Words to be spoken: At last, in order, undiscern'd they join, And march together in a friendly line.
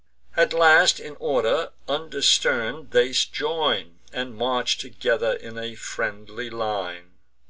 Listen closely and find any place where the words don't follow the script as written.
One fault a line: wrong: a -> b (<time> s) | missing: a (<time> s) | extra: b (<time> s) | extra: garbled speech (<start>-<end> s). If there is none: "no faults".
no faults